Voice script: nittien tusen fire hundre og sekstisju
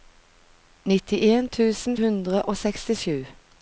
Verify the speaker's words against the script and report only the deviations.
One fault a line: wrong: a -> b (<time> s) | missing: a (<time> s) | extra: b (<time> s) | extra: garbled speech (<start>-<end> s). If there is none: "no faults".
missing: fire (2.0 s)